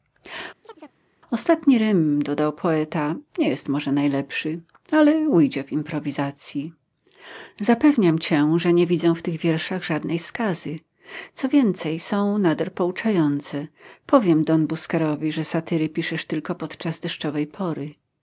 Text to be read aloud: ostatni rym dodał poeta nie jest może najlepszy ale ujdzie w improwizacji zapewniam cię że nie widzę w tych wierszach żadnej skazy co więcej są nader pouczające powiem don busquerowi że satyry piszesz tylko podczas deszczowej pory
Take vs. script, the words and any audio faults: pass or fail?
fail